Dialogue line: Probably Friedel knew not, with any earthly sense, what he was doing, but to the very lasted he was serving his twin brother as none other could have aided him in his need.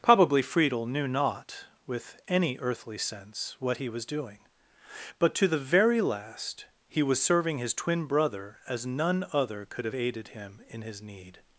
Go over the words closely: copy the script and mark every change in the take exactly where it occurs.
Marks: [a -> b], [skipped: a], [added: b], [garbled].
Probably Friedel knew not, with any earthly sense, what he was doing, but to the very [lasted -> last] he was serving his twin brother as none other could have aided him in his need.